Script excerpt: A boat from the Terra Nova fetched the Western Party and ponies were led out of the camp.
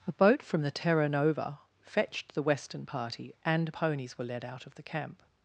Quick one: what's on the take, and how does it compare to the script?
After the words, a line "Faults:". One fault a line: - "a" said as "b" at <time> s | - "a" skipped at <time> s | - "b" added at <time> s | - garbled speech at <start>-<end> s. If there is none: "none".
A boat from the Terra Nova fetched the Western Party and ponies were led out of the camp.
Faults:
none